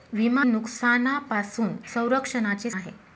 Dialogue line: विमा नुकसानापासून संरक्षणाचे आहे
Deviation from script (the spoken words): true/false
false